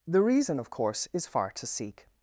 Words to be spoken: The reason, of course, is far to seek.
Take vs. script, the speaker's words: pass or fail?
pass